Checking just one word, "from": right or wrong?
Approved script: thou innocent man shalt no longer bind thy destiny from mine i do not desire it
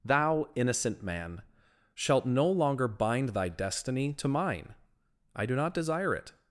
wrong